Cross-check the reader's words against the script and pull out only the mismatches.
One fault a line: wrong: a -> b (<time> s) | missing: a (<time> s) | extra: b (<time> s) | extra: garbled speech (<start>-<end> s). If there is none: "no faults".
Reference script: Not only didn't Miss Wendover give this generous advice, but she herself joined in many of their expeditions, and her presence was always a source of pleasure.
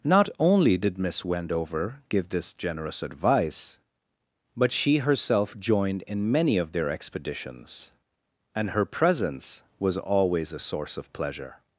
wrong: didn't -> did (0.8 s)